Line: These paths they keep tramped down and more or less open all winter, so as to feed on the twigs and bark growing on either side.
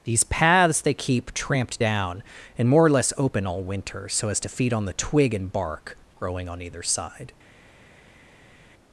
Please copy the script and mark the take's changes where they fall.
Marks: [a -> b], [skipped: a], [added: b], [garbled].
These paths they keep tramped down and more or less open all winter, so as to feed on the [twigs -> twig] and bark growing on either side.